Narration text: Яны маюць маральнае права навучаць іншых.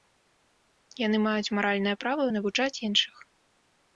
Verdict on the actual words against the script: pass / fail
pass